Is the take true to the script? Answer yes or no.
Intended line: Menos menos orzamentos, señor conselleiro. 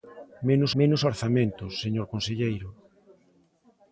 yes